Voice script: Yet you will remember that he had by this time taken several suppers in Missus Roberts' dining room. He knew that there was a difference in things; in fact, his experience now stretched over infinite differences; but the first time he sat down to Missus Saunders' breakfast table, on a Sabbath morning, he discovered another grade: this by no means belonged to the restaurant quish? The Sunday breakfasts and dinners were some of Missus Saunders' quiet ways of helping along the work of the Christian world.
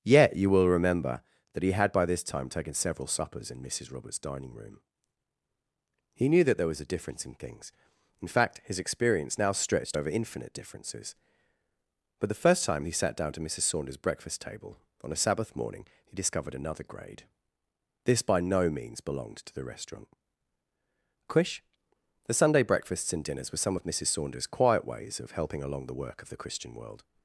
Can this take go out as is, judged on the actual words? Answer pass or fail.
pass